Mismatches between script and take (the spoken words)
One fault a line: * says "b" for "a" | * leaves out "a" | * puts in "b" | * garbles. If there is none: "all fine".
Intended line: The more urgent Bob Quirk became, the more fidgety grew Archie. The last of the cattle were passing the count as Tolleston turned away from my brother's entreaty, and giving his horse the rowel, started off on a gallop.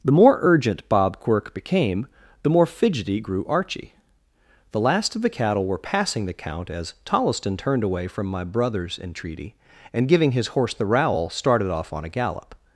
all fine